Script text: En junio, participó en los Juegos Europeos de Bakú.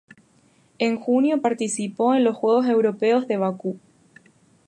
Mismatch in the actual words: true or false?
false